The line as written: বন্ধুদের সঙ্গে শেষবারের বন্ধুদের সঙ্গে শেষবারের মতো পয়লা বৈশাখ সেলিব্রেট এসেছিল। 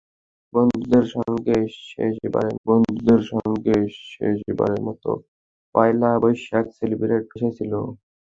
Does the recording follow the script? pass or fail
pass